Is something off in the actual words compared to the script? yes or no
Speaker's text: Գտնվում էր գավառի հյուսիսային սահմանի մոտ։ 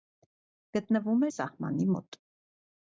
yes